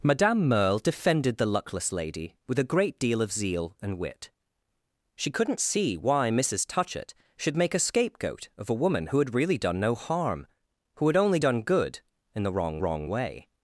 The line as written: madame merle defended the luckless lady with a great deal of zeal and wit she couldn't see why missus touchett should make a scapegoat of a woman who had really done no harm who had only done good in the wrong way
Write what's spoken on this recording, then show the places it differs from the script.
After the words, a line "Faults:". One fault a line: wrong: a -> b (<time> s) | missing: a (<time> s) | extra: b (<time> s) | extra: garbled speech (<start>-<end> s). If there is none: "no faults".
madame merle defended the luckless lady with a great deal of zeal and wit she couldn't see why missus touchett should make a scapegoat of a woman who had really done no harm who had only done good in the wrong wrong way
Faults:
extra: wrong (12.8 s)